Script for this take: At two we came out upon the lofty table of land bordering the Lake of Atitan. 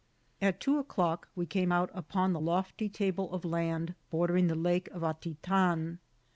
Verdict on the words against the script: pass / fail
fail